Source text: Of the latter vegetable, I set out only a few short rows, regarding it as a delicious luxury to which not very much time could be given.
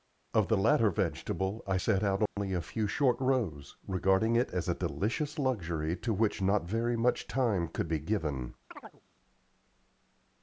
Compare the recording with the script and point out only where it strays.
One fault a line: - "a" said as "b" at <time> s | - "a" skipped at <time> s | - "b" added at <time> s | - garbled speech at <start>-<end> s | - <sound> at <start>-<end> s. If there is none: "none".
- dropout at 2.3-2.4 s
- chirp at 8.7-9.0 s